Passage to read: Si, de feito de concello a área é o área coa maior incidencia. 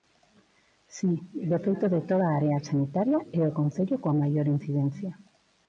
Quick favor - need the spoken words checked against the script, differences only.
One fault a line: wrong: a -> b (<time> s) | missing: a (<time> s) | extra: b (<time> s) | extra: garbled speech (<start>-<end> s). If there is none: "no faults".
wrong: concello -> toda (2.1 s)
extra: sanitaria (2.7 s)
wrong: área -> concello (3.6 s)